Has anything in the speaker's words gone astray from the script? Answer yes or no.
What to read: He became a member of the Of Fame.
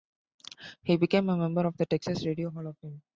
yes